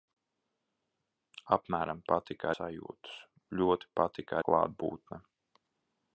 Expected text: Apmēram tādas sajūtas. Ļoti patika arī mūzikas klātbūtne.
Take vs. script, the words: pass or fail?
fail